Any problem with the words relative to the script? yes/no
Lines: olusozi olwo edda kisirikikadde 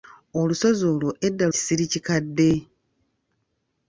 no